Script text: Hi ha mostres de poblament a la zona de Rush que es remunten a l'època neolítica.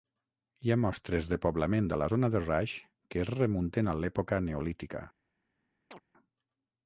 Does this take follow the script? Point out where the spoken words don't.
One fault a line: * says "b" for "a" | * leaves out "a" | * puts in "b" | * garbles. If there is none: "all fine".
all fine